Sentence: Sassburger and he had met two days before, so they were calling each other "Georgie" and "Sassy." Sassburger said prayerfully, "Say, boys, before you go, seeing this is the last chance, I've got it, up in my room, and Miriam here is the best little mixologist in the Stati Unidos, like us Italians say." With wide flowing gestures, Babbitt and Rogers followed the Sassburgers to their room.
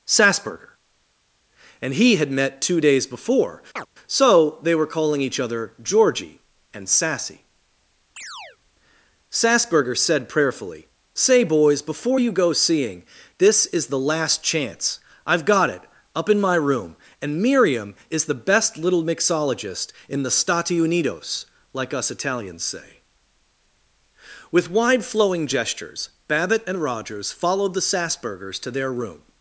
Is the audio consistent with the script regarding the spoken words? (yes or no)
no